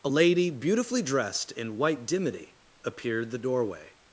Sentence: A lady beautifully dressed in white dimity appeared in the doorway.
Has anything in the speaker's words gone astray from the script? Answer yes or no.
yes